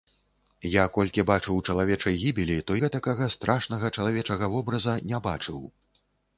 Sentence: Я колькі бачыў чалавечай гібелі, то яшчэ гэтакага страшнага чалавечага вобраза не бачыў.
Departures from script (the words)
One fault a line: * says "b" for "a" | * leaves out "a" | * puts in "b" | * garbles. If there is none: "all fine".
* leaves out "яшчэ"